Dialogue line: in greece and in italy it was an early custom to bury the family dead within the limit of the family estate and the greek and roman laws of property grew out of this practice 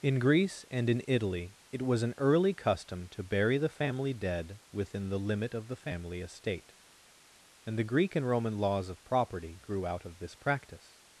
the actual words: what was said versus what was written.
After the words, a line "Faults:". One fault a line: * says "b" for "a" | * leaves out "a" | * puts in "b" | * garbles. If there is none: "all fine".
in greece and in italy it was an early custom to bury the family dead within the limit of the family estate and the greek and roman laws of property grew out of this practice
Faults:
all fine